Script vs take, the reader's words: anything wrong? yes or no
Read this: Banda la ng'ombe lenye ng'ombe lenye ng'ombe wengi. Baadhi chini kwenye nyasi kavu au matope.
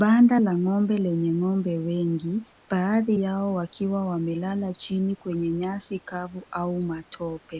yes